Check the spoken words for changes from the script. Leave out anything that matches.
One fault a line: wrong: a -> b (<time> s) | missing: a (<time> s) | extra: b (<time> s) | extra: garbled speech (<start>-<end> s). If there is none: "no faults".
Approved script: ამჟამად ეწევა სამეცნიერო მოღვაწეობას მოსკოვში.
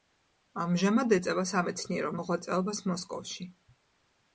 no faults